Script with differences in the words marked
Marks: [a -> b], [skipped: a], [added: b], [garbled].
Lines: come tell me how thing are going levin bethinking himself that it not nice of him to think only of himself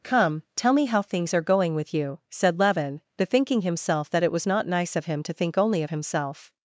come tell me how [thing -> things] are going [added: with you said] levin bethinking himself that it [added: was] not nice of him to think only of himself